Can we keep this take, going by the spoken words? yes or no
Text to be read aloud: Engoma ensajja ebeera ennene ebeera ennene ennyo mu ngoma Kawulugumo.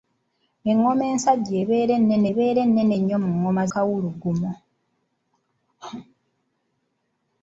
yes